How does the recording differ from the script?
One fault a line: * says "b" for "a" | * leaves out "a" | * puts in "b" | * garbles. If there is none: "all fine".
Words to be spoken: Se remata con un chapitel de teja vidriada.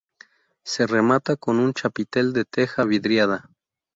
all fine